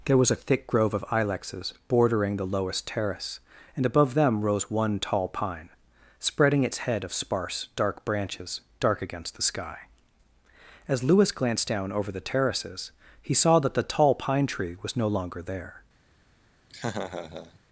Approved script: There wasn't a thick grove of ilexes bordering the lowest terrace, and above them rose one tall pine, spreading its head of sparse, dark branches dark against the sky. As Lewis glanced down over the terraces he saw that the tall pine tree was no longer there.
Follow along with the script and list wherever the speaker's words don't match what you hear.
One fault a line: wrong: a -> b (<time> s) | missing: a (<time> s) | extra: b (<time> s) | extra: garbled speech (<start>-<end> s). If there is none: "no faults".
wrong: wasn't -> was (0.2 s)